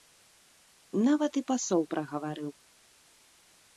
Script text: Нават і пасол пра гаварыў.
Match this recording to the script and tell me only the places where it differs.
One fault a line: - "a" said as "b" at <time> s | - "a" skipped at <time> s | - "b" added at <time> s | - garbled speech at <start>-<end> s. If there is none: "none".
none